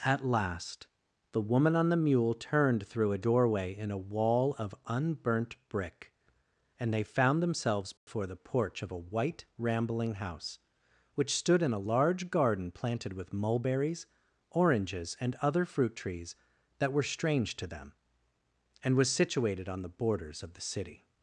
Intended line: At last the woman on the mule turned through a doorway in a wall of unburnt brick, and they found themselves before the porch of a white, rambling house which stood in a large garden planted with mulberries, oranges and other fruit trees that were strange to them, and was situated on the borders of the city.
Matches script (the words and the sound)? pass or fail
fail